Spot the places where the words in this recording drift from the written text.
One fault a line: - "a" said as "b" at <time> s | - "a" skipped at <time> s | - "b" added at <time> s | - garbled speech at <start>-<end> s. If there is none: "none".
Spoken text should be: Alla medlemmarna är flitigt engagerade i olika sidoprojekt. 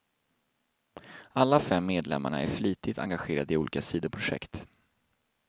- "fem" added at 1.6 s